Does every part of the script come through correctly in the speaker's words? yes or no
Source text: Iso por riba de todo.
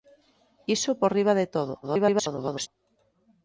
no